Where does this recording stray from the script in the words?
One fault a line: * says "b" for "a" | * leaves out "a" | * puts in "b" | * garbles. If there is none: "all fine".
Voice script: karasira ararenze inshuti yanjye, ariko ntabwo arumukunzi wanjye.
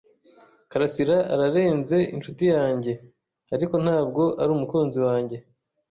all fine